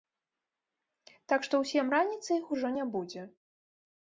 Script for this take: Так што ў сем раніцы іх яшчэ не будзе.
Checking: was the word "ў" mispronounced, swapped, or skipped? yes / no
no